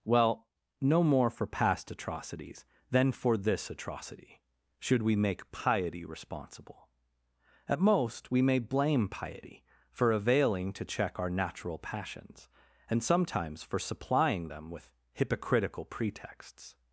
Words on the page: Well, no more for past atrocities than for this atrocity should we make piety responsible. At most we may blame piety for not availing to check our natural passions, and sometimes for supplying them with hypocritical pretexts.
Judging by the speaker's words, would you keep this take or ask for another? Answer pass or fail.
fail